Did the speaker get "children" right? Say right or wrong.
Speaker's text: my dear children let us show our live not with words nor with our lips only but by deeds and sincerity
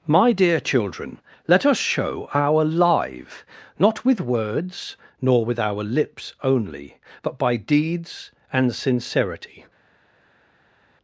right